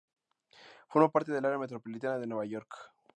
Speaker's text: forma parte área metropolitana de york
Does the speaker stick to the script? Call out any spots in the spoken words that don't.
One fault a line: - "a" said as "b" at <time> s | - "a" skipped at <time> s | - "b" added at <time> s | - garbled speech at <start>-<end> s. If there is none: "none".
- "del" added at 1.3 s
- "nueva" added at 2.3 s